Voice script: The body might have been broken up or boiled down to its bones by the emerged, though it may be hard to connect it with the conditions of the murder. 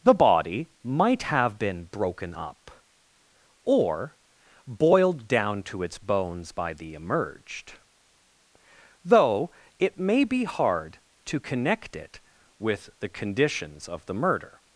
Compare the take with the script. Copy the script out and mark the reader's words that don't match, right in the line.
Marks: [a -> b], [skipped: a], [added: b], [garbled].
The body might have been broken up or boiled down to its bones by the emerged, though it may be hard to connect it with the conditions of the murder.